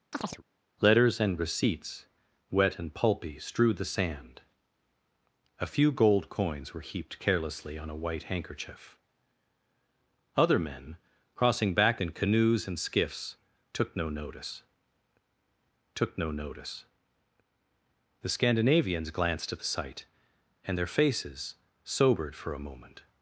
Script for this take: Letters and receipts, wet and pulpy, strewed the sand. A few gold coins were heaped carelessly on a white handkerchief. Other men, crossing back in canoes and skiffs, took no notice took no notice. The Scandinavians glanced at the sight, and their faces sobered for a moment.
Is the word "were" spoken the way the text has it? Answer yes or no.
yes